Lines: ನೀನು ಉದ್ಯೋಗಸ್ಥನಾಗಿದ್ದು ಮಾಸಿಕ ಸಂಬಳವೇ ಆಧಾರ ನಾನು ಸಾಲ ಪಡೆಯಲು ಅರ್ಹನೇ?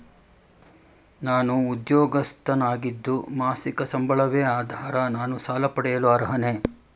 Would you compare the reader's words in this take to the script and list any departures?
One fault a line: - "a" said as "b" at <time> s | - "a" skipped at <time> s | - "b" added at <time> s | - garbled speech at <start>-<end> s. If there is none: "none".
- "ನೀನು" said as "ನಾನು" at 1.2 s